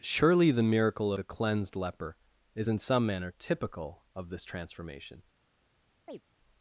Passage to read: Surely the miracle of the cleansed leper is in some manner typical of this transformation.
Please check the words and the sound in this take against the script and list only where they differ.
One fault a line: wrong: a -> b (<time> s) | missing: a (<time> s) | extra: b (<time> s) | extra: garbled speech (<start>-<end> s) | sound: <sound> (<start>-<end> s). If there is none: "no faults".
missing: of (1.1 s)
sound: chirp (6.1-6.2 s)